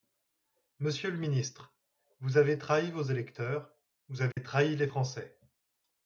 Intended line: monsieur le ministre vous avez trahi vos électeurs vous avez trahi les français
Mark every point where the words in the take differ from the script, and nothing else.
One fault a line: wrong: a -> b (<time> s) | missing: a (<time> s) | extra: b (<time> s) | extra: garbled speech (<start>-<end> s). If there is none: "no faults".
no faults